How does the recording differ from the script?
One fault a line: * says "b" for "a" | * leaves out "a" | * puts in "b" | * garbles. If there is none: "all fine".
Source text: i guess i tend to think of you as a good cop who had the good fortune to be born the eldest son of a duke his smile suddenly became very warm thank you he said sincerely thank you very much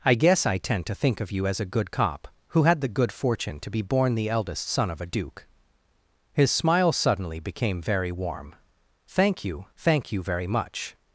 * leaves out "he said sincerely"